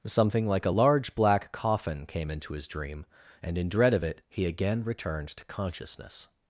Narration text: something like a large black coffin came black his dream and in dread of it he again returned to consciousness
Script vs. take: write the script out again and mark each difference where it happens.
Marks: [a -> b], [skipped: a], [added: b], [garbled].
something like a large black coffin came [black -> into] his dream and in dread of it he again returned to consciousness